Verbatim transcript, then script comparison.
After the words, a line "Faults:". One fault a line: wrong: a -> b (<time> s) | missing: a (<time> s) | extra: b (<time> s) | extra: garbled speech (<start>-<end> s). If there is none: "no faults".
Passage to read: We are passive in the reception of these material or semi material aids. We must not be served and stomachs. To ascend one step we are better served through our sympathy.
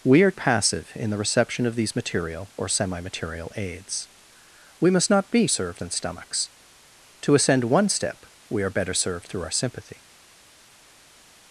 We are passive in the reception of these material or semi material aids. We must not be served and stomachs. To ascend one step we are better served through our sympathy.
Faults:
no faults